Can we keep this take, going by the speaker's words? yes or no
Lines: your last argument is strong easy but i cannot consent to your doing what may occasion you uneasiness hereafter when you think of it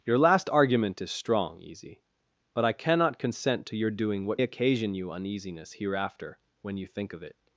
no